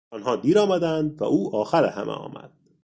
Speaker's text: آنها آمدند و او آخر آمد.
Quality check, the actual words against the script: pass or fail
fail